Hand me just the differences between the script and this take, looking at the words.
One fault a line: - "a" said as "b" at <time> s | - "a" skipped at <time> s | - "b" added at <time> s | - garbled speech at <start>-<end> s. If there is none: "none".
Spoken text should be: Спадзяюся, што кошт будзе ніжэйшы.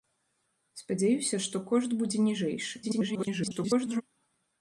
- garbled speech at 2.8-4.0 s